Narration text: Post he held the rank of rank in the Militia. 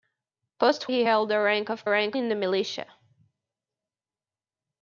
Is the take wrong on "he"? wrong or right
right